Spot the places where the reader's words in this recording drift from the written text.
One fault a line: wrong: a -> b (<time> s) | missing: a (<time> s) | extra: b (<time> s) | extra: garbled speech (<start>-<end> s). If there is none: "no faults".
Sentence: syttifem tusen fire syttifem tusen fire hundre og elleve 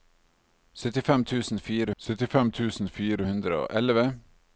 no faults